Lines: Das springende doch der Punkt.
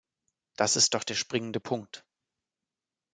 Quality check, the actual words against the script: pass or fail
fail